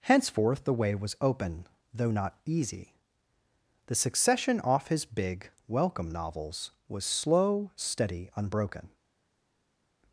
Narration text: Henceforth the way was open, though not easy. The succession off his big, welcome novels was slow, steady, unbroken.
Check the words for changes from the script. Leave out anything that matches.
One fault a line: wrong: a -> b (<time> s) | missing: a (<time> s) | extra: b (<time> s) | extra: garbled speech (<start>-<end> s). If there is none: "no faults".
no faults